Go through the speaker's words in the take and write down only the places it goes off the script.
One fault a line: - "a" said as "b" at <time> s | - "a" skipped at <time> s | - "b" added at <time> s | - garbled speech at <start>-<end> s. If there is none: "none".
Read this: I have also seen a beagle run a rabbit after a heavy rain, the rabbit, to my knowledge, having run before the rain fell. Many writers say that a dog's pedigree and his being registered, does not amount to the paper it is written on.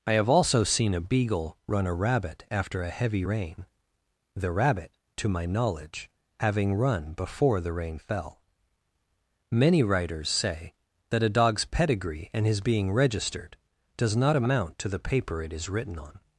none